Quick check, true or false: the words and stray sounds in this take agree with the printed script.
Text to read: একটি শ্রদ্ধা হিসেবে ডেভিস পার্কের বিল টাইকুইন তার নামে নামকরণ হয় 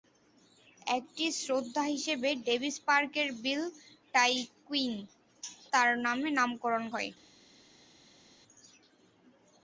true